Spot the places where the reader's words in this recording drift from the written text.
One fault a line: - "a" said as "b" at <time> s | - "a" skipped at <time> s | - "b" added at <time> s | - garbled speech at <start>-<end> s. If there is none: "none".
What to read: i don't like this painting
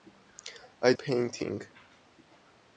- "don't like this" skipped at 0.9 s